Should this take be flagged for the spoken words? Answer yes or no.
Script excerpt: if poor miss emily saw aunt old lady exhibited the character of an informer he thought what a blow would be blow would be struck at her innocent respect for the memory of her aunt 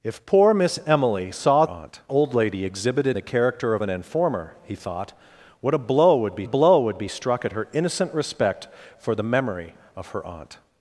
no